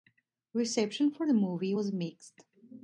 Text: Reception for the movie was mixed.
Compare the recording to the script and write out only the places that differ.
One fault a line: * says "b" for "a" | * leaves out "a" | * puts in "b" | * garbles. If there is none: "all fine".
all fine